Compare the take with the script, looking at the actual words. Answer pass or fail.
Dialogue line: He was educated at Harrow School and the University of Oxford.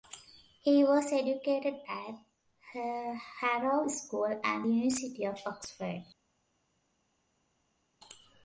pass